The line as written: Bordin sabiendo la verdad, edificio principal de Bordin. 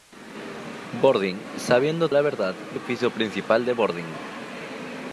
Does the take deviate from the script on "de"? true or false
false